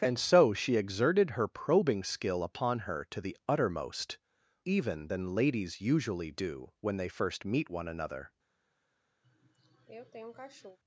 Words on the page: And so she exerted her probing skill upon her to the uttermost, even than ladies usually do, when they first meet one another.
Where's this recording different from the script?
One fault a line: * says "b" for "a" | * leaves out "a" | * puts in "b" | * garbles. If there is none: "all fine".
all fine